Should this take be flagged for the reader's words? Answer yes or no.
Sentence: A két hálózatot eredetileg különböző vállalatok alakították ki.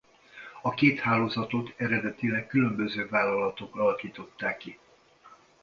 no